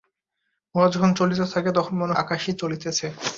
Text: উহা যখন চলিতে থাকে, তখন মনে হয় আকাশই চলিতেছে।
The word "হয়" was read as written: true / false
false